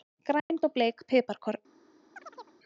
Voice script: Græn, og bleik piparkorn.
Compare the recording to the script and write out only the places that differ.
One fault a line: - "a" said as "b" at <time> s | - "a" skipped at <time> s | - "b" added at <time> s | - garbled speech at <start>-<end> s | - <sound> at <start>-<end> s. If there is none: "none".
- dropout at 0.4-0.5 s
- chirp at 2.2-2.6 s